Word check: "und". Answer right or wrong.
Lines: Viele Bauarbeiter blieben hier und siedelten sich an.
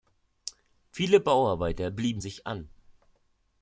wrong